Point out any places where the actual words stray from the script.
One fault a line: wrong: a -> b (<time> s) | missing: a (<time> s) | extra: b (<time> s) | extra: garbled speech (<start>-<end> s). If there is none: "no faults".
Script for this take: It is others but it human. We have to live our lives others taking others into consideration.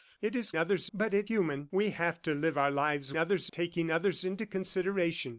no faults